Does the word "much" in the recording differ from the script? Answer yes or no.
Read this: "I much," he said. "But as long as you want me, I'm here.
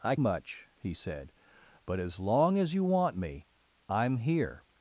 no